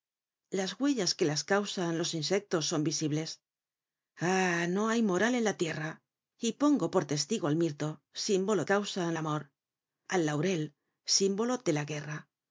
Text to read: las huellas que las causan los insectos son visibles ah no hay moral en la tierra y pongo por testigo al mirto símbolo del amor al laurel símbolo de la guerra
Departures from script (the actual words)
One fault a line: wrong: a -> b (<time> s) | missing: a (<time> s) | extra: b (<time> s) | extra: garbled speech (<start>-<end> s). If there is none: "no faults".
wrong: del -> causan (8.6 s)